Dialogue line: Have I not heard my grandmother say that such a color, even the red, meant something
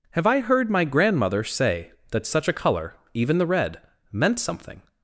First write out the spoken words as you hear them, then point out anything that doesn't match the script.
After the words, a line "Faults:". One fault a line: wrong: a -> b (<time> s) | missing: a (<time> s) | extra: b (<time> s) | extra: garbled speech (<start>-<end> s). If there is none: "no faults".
Have I heard my grandmother say that such a color, even the red, meant something
Faults:
missing: not (0.4 s)